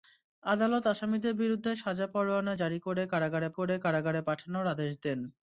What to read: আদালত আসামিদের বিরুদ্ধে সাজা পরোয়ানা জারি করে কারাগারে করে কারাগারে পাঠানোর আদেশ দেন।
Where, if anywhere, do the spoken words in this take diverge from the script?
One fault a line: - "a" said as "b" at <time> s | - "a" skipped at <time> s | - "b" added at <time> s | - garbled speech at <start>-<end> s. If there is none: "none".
none